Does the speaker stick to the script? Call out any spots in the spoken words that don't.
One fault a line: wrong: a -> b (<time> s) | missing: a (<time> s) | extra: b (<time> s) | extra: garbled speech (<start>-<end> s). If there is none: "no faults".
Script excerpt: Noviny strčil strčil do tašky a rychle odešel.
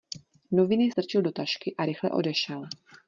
missing: strčil (1.2 s)